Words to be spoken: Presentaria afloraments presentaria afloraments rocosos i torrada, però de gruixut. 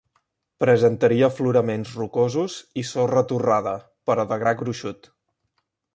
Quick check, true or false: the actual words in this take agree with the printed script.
false